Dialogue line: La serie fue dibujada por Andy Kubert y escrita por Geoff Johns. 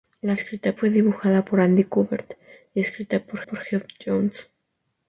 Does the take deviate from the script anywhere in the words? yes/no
yes